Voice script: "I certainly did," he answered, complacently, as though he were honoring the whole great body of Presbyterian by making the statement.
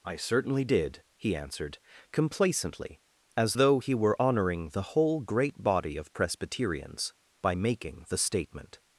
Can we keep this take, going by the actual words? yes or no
no